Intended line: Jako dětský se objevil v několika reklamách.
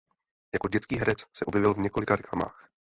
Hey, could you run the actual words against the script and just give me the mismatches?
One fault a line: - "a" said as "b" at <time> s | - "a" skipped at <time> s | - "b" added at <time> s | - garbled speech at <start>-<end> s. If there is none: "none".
- "herec" added at 1.0 s